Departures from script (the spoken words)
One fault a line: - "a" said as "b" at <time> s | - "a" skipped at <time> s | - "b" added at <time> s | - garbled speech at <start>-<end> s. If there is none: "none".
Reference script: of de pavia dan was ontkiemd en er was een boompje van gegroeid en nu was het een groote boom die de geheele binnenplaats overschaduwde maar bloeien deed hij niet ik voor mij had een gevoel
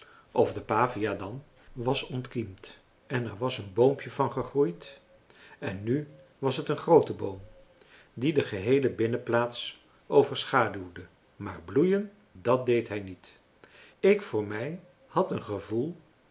- "dat" added at 12.3 s